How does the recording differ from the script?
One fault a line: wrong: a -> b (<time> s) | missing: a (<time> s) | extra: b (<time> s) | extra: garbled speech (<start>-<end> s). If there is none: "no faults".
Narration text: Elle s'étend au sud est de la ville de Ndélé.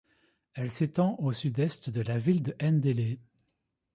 no faults